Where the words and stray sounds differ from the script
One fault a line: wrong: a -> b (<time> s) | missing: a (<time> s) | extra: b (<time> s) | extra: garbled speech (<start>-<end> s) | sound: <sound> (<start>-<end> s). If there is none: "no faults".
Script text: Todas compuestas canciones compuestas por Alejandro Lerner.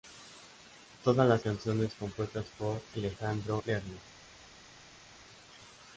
wrong: compuestas -> las (1.3 s)